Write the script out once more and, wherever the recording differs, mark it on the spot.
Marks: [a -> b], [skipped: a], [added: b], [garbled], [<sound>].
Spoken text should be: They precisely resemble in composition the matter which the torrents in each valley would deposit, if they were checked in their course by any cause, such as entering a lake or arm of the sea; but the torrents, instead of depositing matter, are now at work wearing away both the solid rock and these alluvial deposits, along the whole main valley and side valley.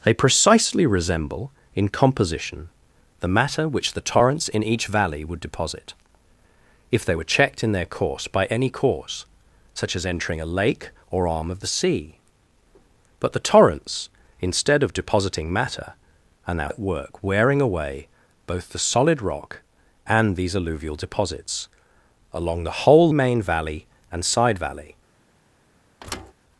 They precisely resemble in composition the matter which the torrents in each valley would deposit, if they were checked in their course by any cause, such as entering a lake or arm of the sea; but the torrents, instead of depositing matter, are now at work wearing away both the solid rock and these alluvial deposits, along the whole main valley and side valley. [thud]